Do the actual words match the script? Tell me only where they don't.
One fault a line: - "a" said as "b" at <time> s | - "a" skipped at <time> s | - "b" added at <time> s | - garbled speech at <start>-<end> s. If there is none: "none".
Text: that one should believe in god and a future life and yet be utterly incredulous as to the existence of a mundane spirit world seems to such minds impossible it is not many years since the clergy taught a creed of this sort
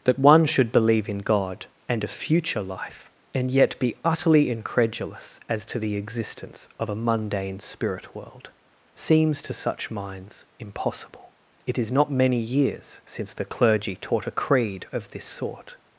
none